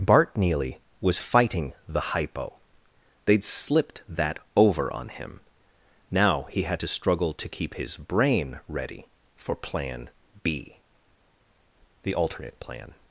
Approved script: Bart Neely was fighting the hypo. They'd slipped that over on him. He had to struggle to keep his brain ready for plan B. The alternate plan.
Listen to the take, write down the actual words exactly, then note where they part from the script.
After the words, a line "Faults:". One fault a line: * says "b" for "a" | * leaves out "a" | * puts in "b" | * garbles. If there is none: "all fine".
Bart Neely was fighting the hypo. They'd slipped that over on him. Now he had to struggle to keep his brain ready for plan B. The alternate plan.
Faults:
* puts in "Now"